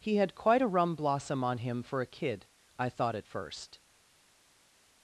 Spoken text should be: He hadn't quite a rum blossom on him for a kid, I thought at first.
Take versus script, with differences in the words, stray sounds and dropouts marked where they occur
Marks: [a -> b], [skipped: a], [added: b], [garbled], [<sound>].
He [hadn't -> had] quite a rum blossom on him for a kid, I thought at first.